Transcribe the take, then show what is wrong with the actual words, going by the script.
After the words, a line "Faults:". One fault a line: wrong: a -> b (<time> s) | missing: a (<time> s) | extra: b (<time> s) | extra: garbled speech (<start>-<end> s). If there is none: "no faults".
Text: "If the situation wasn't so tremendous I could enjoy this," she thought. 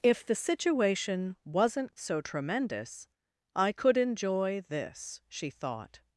"If the situation wasn't so tremendous I could enjoy this," she thought.
Faults:
no faults